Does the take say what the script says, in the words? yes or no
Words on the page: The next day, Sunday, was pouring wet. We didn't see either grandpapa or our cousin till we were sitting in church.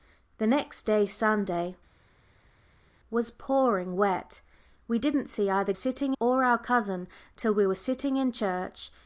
no